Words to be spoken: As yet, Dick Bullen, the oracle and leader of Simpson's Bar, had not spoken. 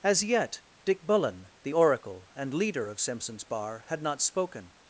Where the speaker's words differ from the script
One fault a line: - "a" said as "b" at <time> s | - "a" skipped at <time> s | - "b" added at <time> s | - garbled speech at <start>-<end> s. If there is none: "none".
none